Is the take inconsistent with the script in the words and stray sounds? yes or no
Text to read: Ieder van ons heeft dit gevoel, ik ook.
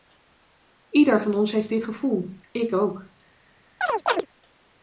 yes